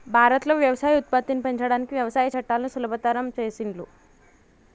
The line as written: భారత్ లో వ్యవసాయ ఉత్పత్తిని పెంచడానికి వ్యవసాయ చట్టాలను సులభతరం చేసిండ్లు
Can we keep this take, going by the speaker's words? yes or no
yes